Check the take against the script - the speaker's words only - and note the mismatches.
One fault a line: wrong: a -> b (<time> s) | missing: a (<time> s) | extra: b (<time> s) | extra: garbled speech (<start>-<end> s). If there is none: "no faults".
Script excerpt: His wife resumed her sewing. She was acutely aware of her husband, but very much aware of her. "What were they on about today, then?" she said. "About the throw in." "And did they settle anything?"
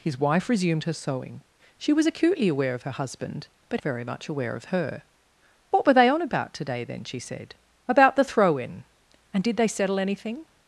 no faults